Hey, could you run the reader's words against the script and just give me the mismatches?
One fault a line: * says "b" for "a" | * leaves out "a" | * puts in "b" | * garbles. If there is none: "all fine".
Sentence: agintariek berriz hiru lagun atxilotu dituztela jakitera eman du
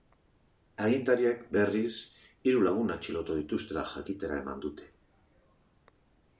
* says "dute" for "du"